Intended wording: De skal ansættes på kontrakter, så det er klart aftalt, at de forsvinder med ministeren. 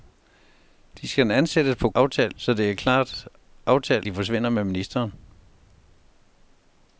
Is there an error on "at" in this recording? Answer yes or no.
yes